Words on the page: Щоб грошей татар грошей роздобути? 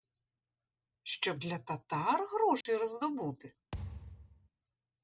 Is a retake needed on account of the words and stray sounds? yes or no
yes